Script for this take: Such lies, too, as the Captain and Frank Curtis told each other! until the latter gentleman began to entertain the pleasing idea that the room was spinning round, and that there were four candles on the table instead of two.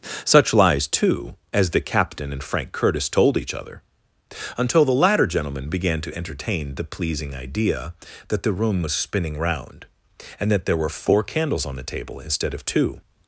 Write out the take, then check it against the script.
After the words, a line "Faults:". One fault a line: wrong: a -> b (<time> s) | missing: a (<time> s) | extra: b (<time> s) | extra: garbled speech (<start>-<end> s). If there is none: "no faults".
Such lies, too, as the Captain and Frank Curtis told each other! until the latter gentleman began to entertain the pleasing idea that the room was spinning round, and that there were four candles on the table instead of two.
Faults:
no faults